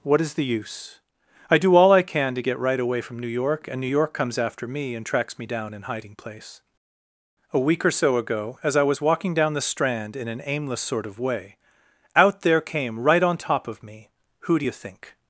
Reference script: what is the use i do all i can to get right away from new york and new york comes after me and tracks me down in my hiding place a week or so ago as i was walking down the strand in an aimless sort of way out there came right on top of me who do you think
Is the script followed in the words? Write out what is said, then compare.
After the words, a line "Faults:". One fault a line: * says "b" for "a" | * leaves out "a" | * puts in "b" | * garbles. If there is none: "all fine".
what is the use i do all i can to get right away from new york and new york comes after me and tracks me down in hiding place a week or so ago as i was walking down the strand in an aimless sort of way out there came right on top of me who do you think
Faults:
* leaves out "my"